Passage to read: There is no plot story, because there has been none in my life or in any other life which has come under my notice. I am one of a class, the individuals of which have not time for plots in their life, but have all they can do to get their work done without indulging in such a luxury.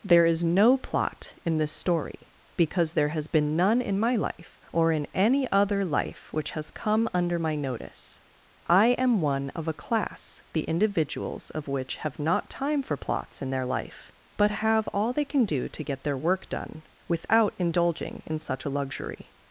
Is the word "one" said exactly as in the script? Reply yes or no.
yes